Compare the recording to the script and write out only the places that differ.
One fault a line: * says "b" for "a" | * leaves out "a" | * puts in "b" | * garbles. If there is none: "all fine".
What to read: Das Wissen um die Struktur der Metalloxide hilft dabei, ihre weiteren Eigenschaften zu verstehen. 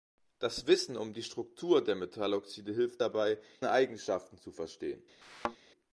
* leaves out "ihre weiteren"